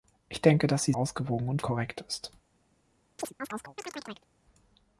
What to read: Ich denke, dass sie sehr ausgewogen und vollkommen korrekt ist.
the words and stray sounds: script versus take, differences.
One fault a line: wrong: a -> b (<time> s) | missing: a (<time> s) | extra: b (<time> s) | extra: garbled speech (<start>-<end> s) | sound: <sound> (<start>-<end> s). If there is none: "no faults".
missing: sehr (0.9 s)
missing: vollkommen (1.6 s)
sound: chirp (3.2-4.3 s)